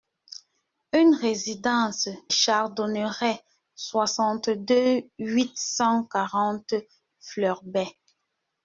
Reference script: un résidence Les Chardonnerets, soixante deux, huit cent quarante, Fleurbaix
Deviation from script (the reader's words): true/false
true